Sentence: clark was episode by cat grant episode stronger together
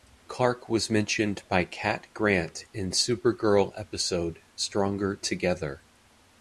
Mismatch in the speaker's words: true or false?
true